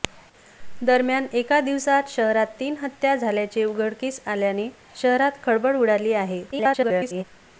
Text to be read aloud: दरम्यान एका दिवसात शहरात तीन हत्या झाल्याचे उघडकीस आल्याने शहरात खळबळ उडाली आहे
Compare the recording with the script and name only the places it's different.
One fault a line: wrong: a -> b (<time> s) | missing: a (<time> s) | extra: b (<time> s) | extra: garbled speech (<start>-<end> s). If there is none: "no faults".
extra: garbled speech (6.5-7.2 s)